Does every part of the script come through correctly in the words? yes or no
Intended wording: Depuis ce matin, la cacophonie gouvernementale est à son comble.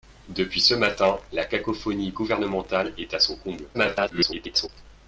no